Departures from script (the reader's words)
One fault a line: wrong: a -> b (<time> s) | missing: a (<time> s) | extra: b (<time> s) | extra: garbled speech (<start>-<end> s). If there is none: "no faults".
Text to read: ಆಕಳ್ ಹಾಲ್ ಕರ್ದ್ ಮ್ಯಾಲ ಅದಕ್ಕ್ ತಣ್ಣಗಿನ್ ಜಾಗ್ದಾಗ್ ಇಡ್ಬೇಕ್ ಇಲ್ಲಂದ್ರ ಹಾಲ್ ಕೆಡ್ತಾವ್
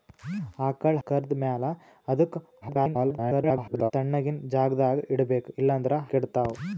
missing: ಹಾಲ್ (1.0 s)
extra: garbled speech (2.6-3.9 s)
missing: ಹಾಲ್ (6.0 s)